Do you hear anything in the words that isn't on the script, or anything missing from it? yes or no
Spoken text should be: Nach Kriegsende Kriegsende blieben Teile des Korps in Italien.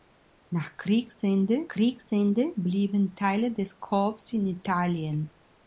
no